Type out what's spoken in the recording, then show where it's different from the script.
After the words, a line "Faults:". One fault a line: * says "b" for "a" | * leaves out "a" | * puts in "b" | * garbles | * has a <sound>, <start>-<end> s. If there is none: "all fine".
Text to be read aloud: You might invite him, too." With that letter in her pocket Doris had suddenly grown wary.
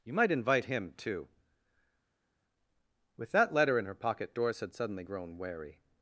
You might invite him, too." With that letter in her pocket Doris had suddenly grown wary.
Faults:
all fine